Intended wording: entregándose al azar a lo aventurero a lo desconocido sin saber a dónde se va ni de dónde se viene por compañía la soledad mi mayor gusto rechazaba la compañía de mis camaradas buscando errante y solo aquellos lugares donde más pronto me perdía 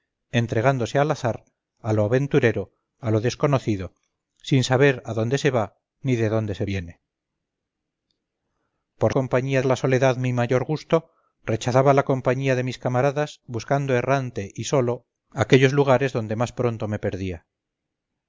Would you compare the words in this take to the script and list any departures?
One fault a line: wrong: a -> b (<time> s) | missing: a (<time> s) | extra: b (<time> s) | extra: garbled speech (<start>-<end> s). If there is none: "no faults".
no faults